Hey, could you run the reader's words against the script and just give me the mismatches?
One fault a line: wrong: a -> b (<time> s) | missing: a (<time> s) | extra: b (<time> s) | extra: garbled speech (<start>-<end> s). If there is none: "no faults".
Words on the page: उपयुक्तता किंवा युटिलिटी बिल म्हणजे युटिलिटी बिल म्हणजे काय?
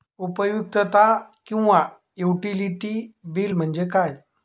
missing: युटिलिटी बिल म्हणजे (3.8 s)